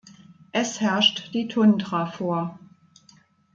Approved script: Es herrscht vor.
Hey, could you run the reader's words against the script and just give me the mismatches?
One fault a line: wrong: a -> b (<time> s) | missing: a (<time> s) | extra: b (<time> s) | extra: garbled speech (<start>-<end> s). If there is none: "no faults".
extra: die Tundra (1.3 s)